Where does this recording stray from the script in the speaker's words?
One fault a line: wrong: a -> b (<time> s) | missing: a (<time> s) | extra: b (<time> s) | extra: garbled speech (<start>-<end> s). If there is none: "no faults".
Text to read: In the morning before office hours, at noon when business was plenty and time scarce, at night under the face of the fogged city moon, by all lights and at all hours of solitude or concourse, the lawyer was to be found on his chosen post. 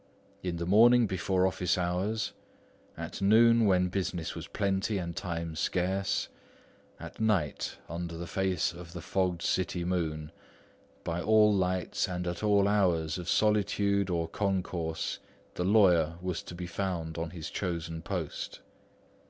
no faults